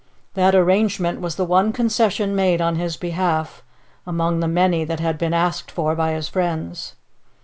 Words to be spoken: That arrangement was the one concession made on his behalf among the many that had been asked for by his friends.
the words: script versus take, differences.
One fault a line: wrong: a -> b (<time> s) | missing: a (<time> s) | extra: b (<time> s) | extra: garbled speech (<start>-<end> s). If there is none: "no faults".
no faults